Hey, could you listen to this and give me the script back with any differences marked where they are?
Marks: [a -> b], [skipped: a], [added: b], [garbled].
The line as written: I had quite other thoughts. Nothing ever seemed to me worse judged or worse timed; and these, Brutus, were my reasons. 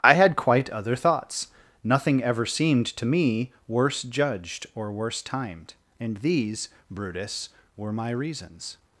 I had quite other thoughts. Nothing ever seemed to me worse judged or worse timed; and these, Brutus, were my reasons.